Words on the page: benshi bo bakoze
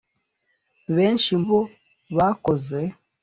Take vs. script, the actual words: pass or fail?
pass